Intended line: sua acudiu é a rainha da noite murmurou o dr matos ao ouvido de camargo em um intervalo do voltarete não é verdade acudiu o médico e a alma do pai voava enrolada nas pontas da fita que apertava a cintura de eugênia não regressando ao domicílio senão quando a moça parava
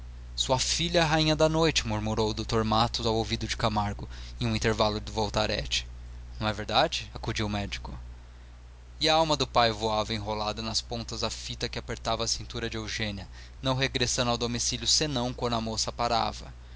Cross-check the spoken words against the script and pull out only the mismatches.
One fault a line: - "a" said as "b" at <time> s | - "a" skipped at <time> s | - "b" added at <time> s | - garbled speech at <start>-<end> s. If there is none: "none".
- "acudiu" said as "filha" at 0.6 s